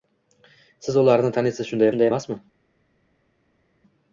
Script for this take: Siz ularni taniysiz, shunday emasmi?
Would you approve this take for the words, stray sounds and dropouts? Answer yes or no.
no